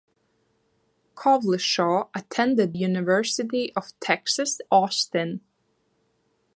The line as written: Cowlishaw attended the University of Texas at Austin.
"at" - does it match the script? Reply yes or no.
no